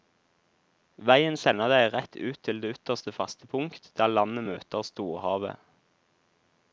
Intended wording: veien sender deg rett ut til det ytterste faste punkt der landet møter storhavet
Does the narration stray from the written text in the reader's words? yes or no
no